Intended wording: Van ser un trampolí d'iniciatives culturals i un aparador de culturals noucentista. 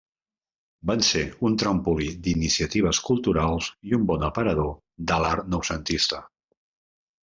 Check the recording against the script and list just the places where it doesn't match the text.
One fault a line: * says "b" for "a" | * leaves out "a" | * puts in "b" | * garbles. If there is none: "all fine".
* puts in "bon"
* says "l'art" for "culturals"